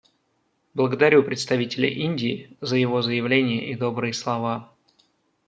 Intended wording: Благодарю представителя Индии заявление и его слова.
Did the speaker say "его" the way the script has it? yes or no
no